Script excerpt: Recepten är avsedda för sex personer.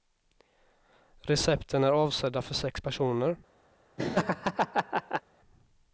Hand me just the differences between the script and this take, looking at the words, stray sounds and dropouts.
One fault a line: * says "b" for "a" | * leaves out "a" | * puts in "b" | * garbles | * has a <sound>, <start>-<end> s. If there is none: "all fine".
* has a laugh, 4.0-5.2 s